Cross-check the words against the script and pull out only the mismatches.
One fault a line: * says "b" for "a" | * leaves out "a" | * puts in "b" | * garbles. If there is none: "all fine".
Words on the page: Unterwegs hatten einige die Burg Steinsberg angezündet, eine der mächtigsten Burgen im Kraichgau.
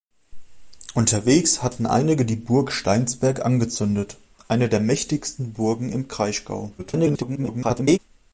* garbles